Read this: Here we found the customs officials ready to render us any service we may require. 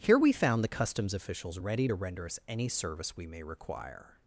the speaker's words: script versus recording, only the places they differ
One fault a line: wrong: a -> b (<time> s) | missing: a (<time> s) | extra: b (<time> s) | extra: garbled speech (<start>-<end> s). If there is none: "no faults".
no faults